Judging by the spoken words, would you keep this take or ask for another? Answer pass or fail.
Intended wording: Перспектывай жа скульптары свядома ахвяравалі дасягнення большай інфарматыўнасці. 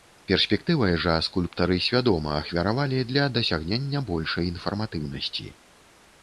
fail